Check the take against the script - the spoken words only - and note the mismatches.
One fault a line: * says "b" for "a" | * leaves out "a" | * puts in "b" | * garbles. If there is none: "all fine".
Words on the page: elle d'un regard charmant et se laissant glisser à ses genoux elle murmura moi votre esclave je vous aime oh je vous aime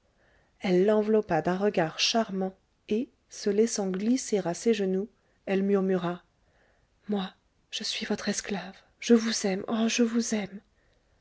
* puts in "l'enveloppa"
* puts in "je suis"